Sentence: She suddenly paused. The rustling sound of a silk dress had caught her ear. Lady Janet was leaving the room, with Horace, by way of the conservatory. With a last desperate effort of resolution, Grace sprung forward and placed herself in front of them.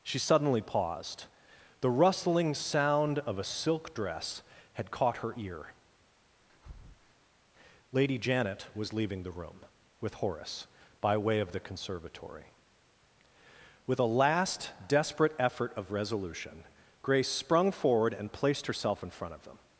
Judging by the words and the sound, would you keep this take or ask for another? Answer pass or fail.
fail